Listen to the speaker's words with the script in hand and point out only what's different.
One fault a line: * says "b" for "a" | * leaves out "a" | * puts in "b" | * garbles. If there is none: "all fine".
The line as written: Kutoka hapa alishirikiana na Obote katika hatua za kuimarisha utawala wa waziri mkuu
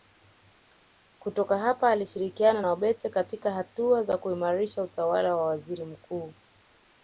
all fine